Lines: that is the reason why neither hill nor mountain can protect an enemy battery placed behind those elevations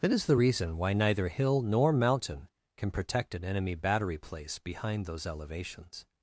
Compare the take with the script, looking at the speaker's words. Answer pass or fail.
fail